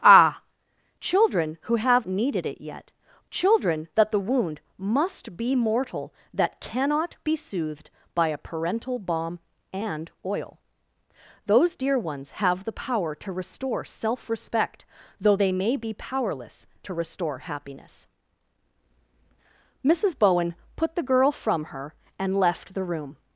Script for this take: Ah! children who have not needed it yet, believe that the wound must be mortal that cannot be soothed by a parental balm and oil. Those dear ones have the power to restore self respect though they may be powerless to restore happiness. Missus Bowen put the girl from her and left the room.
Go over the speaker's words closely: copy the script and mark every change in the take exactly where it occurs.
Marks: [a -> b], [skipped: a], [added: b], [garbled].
Ah! children who have [skipped: not] needed it yet, [believe -> children] that the wound must be mortal that cannot be soothed by a parental balm and oil. Those dear ones have the power to restore self respect though they may be powerless to restore happiness. Missus Bowen put the girl from her and left the room.